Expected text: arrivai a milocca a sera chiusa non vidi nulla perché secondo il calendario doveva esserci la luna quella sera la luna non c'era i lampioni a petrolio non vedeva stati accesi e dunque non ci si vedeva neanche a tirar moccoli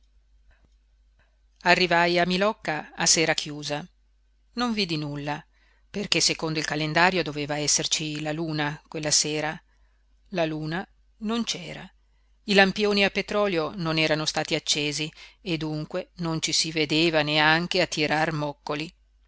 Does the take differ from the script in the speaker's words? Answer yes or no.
yes